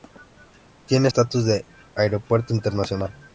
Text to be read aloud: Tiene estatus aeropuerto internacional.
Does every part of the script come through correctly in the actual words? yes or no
no